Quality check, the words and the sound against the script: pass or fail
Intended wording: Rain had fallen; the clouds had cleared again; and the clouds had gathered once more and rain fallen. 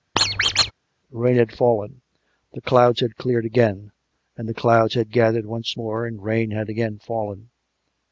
fail